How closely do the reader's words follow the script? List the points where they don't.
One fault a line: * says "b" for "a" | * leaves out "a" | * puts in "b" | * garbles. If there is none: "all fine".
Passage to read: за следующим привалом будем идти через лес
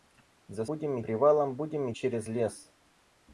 * says "будем" for "следующим"
* leaves out "идти"